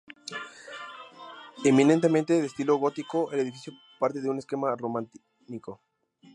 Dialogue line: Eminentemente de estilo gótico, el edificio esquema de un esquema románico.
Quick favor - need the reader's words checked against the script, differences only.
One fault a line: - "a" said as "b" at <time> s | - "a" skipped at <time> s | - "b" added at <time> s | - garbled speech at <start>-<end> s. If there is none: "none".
- "esquema" said as "parte" at 4.0 s